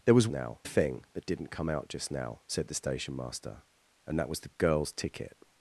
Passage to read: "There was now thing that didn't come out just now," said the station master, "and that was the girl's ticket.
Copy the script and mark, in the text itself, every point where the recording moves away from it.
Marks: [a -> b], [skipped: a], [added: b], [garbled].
"There was now thing that didn't come out just now," said the station master, "and that was the girl's ticket.